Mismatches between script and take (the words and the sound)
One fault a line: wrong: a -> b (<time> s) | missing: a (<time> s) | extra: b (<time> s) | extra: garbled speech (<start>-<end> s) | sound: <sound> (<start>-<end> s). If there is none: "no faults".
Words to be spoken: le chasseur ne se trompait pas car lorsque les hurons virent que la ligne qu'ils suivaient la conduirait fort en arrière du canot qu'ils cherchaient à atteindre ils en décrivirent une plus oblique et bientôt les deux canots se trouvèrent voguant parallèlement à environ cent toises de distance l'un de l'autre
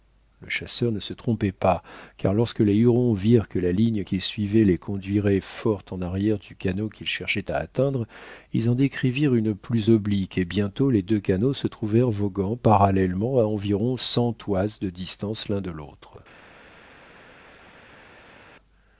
wrong: la -> les (4.6 s)